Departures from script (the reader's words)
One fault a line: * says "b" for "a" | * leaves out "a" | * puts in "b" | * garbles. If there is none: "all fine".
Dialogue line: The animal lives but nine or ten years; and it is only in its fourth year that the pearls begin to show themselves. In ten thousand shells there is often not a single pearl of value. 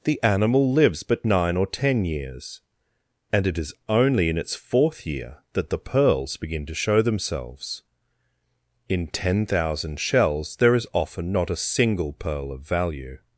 all fine